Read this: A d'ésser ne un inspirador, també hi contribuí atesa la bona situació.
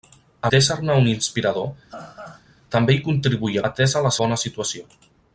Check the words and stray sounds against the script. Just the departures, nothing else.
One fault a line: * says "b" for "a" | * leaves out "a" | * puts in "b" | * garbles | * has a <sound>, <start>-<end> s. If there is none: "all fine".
* has a laugh, 1.9-2.4 s